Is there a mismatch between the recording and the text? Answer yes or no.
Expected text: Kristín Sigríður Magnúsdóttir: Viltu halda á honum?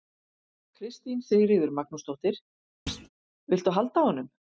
no